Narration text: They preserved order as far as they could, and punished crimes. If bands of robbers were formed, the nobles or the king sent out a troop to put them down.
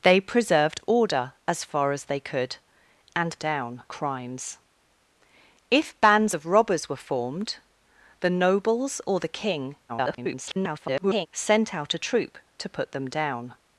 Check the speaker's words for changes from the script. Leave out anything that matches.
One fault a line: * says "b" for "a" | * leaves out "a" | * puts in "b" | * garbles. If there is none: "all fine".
* says "down" for "punished"
* garbles